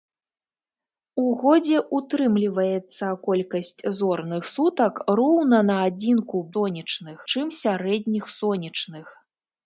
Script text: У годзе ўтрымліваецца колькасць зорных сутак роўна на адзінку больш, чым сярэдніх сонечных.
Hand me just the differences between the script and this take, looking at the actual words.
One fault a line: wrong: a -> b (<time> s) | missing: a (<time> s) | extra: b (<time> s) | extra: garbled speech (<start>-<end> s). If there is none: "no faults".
wrong: больш -> сонечных (6.5 s)